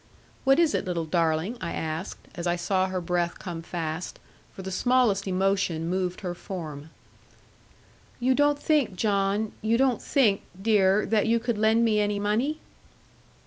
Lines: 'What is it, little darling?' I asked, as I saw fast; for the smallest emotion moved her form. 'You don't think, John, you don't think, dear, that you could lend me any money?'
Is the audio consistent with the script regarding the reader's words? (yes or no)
no